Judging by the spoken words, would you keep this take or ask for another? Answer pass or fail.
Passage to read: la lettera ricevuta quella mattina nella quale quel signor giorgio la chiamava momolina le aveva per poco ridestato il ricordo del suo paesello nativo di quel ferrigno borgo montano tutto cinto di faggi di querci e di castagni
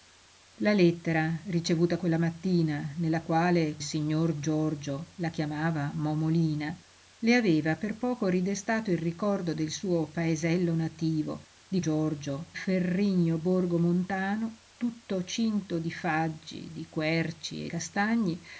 fail